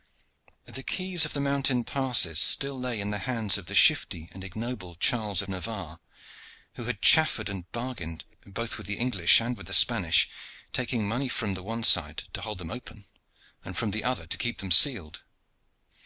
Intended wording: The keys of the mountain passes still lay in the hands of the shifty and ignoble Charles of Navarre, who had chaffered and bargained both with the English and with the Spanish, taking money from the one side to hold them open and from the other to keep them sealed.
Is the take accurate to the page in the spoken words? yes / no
no